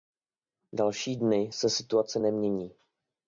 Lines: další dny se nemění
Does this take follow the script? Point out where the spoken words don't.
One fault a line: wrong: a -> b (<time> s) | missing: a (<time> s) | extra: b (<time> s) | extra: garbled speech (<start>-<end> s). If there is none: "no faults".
extra: situace (1.7 s)